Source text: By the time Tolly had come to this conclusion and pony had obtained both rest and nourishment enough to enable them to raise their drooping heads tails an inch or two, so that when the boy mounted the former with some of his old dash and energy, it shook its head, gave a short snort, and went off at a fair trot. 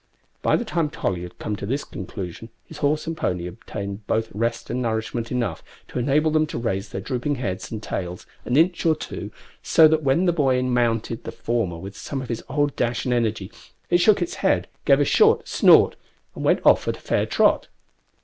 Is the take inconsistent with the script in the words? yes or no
yes